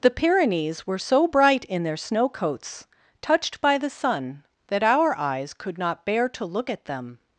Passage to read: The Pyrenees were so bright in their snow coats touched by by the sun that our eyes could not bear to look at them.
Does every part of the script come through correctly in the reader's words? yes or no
no